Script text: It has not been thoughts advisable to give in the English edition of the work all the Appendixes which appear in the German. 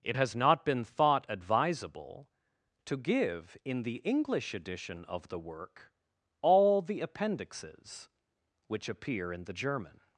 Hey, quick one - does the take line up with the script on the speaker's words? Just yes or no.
no